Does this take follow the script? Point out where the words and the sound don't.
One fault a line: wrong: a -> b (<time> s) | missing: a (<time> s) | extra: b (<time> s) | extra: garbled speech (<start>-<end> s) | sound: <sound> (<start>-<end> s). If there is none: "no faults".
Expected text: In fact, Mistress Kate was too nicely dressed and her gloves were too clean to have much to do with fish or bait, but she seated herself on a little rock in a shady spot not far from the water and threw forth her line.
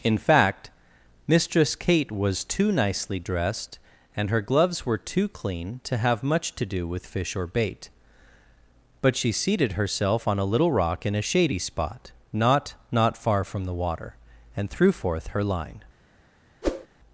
extra: not (12.9 s)
sound: whoosh (16.6-16.9 s)